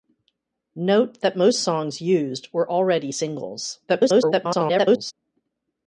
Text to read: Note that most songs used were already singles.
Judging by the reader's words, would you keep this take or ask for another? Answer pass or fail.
fail